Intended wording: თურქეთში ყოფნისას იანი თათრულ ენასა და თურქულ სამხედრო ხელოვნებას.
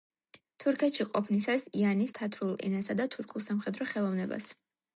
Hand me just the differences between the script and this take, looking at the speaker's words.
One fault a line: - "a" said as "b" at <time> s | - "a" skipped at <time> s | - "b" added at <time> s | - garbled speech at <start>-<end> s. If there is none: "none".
none